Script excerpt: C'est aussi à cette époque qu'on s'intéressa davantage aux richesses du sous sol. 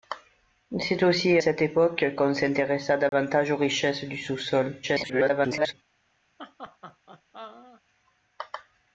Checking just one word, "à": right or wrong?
wrong